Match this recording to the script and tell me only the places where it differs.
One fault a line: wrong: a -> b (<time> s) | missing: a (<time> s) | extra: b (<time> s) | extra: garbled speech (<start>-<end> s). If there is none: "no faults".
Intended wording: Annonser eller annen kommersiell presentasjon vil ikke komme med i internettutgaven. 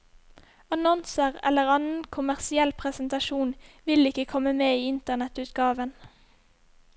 no faults